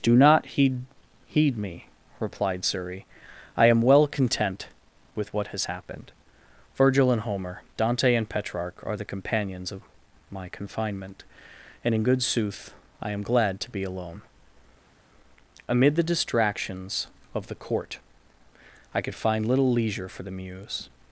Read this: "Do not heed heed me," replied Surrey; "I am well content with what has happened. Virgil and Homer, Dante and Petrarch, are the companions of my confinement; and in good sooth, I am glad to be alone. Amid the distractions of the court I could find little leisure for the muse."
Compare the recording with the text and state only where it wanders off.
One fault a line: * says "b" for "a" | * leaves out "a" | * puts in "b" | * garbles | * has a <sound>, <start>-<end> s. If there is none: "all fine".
all fine